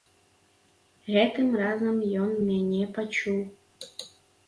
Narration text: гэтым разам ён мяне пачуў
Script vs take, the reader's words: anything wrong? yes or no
no